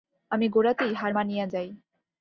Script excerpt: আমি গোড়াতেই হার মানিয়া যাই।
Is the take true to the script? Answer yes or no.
yes